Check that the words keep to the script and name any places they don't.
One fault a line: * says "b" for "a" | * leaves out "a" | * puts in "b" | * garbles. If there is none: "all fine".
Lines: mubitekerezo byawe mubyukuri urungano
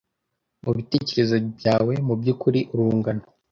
all fine